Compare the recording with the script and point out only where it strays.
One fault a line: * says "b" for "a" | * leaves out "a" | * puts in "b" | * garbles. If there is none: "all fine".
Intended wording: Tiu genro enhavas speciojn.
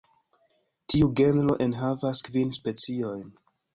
* puts in "kvin"